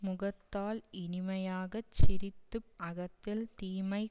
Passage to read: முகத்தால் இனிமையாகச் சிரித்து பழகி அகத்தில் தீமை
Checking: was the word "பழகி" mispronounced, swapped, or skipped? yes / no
yes